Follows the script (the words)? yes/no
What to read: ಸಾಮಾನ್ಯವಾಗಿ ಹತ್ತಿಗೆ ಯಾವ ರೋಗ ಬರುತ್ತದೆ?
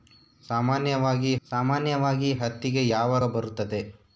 no